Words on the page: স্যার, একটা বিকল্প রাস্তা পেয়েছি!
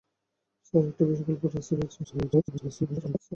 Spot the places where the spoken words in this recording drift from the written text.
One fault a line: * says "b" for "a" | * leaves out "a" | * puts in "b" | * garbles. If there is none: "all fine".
* garbles